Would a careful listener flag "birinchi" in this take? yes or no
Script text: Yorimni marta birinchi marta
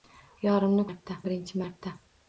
no